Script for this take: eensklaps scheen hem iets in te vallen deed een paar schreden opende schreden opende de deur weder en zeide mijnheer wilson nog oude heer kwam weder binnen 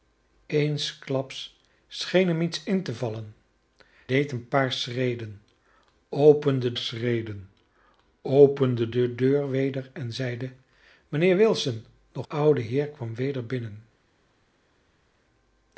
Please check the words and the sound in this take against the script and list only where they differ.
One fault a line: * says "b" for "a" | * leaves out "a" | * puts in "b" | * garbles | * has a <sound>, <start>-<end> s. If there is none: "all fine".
all fine